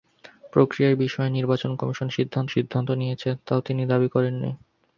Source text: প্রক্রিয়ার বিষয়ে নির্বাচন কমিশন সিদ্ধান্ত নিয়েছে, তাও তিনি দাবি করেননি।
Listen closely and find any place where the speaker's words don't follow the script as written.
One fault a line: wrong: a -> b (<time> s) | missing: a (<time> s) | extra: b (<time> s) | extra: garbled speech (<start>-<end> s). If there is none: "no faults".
extra: সিদ্ধান্ত (2.5 s)